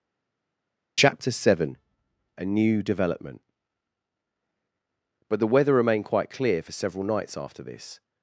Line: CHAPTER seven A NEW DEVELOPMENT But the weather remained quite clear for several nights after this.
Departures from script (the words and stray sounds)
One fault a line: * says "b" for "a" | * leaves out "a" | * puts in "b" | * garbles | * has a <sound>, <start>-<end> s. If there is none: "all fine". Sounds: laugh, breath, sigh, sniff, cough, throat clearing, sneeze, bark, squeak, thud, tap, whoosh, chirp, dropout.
all fine